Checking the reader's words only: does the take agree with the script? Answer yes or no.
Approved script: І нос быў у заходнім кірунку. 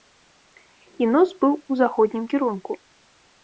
yes